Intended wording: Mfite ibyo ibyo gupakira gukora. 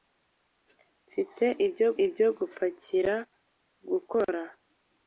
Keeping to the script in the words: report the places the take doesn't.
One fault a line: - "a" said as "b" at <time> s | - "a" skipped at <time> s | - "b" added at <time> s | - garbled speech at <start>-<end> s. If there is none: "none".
none